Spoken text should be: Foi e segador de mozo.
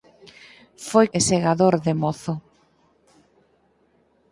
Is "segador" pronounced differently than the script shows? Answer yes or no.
no